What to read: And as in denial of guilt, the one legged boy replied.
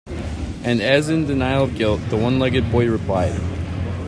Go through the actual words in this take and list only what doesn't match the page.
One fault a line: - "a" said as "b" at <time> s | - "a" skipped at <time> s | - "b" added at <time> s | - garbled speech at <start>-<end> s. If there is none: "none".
none